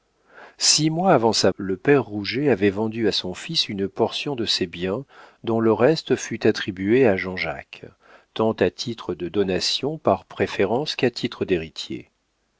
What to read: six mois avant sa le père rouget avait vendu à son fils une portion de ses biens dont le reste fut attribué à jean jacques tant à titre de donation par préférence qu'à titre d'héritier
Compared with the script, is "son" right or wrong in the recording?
right